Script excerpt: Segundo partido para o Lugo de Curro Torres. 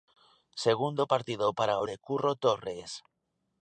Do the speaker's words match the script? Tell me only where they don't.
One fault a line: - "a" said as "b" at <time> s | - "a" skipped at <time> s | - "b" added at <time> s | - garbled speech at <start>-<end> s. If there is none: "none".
- "Lugo" skipped at 1.9 s